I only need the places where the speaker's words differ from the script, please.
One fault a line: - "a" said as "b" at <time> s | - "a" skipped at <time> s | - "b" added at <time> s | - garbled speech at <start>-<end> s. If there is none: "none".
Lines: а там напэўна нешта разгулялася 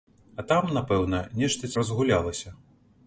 none